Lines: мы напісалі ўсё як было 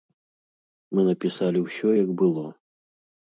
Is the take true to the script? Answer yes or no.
yes